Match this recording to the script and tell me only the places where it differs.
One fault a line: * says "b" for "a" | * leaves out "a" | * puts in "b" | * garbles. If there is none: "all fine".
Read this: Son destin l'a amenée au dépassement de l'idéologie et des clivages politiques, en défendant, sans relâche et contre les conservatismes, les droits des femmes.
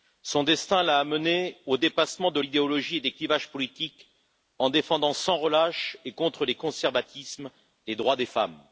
all fine